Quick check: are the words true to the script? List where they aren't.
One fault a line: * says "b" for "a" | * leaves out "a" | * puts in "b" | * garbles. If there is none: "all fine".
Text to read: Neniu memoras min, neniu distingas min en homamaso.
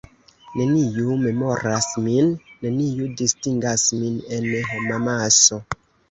all fine